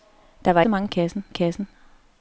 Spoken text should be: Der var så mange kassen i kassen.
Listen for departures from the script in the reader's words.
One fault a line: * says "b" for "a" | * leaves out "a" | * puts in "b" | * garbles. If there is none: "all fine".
all fine